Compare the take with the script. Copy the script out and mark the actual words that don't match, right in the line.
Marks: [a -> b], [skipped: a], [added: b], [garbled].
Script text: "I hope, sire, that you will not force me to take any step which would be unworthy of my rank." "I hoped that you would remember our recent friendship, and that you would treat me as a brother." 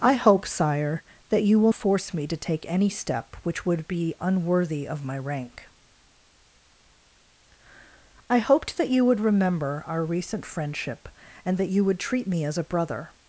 "I hope, sire, that you will [skipped: not] force me to take any step which would be unworthy of my rank." "I hoped that you would remember our recent friendship, and that you would treat me as a brother."